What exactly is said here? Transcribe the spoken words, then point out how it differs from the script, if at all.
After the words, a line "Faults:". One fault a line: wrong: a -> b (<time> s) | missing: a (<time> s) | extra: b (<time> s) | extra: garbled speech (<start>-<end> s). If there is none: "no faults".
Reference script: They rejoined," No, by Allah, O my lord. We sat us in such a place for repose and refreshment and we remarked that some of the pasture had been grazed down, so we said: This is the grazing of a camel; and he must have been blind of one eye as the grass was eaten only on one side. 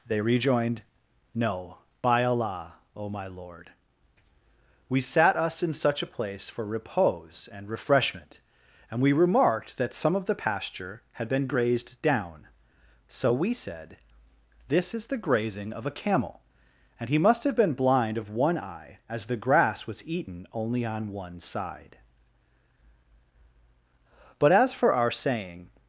They rejoined," No, by Allah, O my lord. We sat us in such a place for repose and refreshment and we remarked that some of the pasture had been grazed down, so we said: This is the grazing of a camel; and he must have been blind of one eye as the grass was eaten only on one side. But as for our saying
Faults:
extra: But as for our saying (24.4 s)